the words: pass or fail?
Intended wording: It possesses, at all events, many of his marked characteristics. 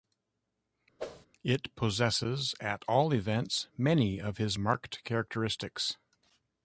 pass